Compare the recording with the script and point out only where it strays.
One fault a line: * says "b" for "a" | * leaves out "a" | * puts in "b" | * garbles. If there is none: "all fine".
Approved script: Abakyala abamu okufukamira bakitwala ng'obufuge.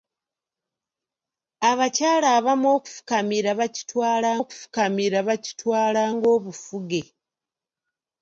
* puts in "okufukamira bakitwala"